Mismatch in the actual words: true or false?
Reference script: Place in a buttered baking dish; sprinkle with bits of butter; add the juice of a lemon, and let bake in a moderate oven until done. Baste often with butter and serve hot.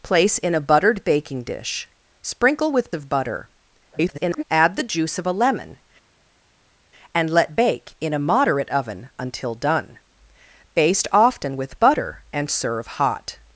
true